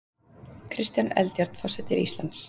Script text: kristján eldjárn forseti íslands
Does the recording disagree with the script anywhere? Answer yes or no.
no